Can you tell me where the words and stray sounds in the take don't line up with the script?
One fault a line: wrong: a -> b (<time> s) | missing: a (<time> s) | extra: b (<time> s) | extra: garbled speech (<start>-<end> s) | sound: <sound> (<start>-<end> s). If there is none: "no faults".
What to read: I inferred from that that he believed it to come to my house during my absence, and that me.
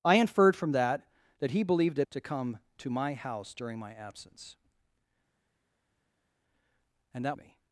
no faults